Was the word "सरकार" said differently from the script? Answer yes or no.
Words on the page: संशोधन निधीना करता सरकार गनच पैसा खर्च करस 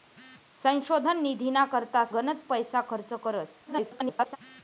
yes